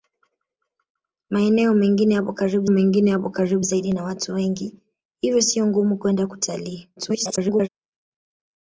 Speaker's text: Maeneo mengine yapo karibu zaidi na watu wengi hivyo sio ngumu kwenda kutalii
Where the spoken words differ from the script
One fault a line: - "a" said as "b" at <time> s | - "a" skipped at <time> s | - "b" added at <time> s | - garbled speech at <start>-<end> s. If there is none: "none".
- "mengine yapo karibu" added at 2.7 s
- garbled speech at 7.0-7.7 s